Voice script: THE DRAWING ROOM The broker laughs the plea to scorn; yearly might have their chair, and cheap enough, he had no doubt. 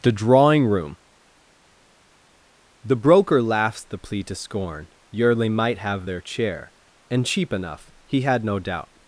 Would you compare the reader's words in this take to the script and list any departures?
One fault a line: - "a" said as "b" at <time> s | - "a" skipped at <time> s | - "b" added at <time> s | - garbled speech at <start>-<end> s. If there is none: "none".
none